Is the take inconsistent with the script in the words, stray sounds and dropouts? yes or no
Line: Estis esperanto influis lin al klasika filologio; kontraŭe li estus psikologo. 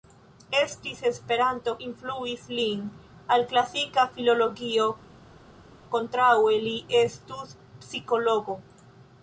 no